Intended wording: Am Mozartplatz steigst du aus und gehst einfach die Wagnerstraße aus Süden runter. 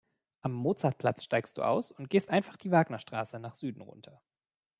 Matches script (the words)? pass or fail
fail